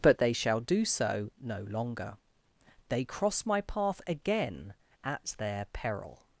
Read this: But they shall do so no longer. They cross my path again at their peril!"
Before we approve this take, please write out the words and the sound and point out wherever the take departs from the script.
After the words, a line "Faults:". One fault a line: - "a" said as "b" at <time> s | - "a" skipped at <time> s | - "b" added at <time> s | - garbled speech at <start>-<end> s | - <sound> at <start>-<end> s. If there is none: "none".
But they shall do so no longer. They cross my path again at their peril!"
Faults:
none